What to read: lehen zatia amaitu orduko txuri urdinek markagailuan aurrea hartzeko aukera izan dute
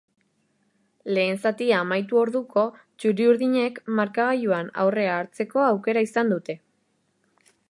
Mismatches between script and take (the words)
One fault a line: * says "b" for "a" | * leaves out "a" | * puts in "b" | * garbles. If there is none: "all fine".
all fine